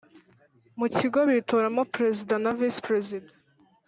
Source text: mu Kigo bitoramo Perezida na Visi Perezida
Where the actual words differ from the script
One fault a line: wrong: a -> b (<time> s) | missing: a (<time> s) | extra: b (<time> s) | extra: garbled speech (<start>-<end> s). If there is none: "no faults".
no faults